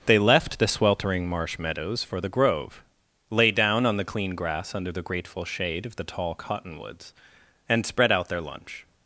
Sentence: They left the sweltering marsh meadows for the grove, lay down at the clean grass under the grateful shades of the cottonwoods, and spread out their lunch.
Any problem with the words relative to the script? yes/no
yes